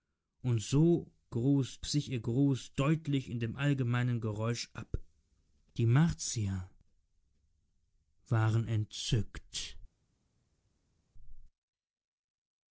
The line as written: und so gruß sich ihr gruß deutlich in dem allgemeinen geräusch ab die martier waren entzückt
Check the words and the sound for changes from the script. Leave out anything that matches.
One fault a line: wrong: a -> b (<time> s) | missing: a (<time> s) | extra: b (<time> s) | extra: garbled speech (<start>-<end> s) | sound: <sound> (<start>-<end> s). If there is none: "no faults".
no faults